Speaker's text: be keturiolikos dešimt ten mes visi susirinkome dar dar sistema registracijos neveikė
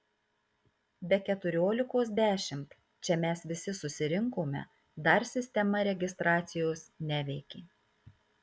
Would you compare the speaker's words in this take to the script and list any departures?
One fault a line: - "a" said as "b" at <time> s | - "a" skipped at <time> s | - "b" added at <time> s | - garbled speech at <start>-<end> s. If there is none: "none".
- "ten" said as "čia" at 3.1 s
- "dar" skipped at 5.3 s